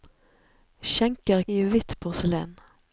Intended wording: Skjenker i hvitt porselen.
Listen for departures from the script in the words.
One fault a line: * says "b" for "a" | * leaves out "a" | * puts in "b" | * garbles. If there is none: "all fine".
all fine